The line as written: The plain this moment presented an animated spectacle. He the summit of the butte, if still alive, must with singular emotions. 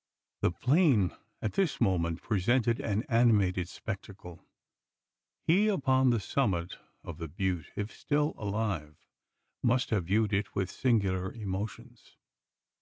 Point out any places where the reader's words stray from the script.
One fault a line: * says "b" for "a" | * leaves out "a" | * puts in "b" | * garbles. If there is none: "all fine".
* puts in "at"
* puts in "upon"
* puts in "have viewed it"